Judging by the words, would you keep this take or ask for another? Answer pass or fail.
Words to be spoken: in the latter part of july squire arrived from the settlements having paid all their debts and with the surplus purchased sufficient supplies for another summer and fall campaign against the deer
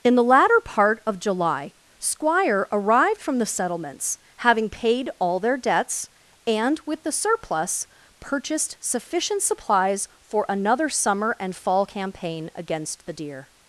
pass